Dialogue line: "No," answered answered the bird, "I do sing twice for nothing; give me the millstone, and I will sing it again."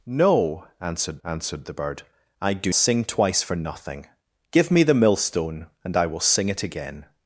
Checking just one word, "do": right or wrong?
right